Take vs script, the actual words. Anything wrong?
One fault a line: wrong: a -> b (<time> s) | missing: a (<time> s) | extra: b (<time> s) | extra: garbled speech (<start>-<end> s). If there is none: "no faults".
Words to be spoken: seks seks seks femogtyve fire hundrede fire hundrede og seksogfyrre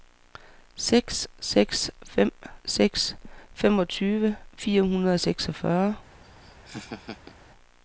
extra: fem (2.0 s)
missing: fire hundrede (5.1 s)